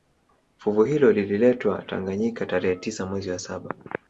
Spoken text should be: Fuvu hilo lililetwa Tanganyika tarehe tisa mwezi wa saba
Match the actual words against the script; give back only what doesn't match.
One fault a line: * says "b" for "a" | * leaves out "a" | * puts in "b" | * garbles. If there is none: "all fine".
all fine